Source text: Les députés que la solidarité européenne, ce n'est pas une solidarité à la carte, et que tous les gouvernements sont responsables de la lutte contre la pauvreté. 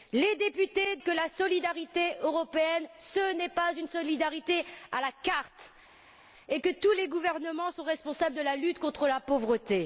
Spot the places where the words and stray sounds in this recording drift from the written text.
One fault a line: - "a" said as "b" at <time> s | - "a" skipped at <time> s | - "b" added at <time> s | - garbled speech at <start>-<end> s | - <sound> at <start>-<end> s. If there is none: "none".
none